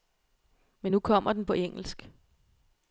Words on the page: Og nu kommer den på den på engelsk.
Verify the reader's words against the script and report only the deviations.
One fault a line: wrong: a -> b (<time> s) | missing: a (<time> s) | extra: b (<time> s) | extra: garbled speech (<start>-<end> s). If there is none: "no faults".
wrong: Og -> Men (0.8 s)
missing: den på (1.5 s)